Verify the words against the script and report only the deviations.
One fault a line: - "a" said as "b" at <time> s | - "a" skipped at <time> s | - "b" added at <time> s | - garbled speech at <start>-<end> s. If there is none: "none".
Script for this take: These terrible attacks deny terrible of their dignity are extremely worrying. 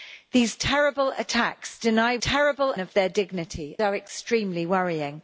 none